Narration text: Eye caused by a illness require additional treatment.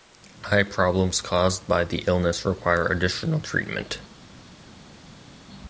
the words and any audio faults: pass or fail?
fail